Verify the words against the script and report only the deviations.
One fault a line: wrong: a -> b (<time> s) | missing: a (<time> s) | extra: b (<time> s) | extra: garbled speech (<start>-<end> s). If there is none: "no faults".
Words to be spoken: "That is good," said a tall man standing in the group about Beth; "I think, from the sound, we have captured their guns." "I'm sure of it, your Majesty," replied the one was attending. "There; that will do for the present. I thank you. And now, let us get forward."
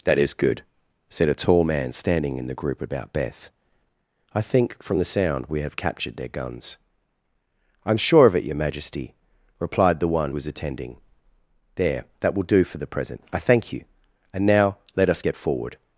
no faults